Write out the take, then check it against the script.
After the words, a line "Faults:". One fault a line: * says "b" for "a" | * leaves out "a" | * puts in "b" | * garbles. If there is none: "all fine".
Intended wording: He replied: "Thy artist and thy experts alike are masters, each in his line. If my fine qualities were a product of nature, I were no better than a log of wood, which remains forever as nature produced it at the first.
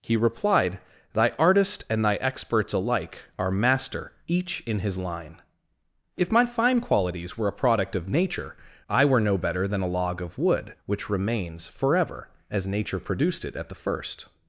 He replied: "Thy artist and thy experts alike are master, each in his line. If my fine qualities were a product of nature, I were no better than a log of wood, which remains forever as nature produced it at the first.
Faults:
* says "master" for "masters"